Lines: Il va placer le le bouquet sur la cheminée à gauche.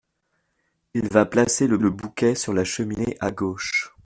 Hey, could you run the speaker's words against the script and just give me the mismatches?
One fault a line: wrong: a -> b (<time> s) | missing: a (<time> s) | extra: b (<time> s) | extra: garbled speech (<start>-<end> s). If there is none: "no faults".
no faults